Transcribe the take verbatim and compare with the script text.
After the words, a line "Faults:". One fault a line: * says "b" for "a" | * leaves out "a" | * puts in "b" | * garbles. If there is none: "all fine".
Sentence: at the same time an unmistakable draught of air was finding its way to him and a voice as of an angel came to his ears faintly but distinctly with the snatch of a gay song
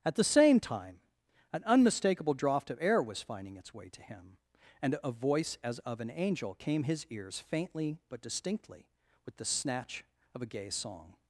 at the same time an unmistakable draught of air was finding its way to him and a voice as of an angel came his ears faintly but distinctly with the snatch of a gay song
Faults:
* leaves out "to"